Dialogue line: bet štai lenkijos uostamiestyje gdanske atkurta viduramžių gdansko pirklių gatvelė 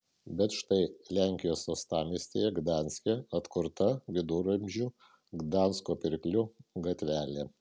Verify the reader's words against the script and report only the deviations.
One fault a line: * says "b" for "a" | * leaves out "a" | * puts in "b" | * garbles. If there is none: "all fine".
all fine